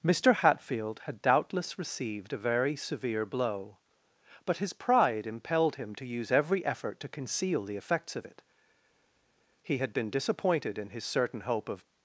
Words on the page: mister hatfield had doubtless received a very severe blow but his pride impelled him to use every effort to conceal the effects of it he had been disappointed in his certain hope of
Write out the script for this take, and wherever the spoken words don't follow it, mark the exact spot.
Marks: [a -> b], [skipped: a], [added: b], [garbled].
mister hatfield had doubtless received a very severe blow but his pride impelled him to use every effort to conceal the effects of it he had been disappointed in his certain hope of